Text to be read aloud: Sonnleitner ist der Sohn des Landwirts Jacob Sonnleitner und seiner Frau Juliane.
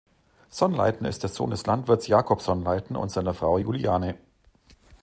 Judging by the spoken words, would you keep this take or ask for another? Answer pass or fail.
pass